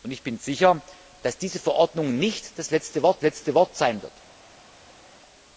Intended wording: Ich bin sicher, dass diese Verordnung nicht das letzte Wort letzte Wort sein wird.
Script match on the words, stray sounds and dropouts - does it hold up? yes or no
yes